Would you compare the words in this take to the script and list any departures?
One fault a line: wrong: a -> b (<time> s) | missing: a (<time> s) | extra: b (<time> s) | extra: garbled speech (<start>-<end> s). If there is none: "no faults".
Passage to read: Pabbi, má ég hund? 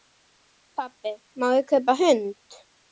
extra: kaupa (1.8 s)